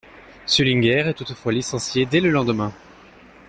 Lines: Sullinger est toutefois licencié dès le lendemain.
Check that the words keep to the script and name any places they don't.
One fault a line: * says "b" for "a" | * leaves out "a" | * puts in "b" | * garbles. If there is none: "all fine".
all fine